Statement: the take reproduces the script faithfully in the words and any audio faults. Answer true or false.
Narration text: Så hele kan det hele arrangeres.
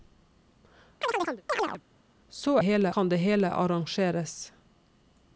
false